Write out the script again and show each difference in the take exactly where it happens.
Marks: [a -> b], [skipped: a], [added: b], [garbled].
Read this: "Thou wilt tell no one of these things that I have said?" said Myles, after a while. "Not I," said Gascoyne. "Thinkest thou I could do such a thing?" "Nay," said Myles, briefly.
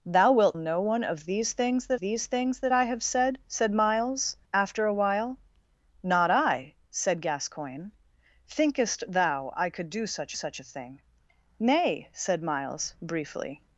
"Thou wilt [skipped: tell] no one of these things that [added: these things that] I have said?" said Myles, after a while. "Not I," said Gascoyne. "Thinkest thou I could do such [added: such] a thing?" "Nay," said Myles, briefly.